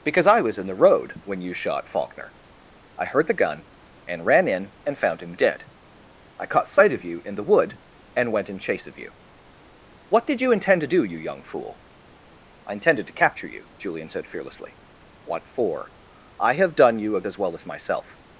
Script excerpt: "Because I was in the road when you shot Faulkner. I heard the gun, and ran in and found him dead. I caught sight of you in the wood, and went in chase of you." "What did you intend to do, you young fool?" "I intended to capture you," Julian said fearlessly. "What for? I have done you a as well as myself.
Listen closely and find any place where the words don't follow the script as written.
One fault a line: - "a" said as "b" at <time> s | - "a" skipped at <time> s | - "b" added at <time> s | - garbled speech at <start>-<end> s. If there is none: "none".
none